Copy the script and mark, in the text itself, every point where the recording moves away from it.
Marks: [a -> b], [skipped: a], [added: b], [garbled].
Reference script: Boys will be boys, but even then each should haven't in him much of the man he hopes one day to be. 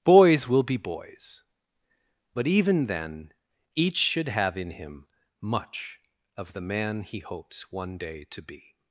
Boys will be boys, but even then each should [haven't -> have] in him much of the man he hopes one day to be.